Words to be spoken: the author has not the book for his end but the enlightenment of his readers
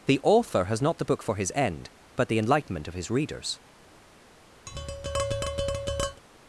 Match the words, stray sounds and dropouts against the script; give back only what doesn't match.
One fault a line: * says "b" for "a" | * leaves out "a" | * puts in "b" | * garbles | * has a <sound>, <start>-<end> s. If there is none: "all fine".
* has a tap, 4.7-6.2 s